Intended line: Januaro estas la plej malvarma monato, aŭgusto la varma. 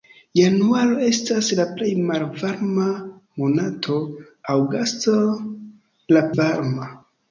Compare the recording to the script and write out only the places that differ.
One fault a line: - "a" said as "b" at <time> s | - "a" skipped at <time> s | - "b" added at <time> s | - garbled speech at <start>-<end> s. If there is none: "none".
none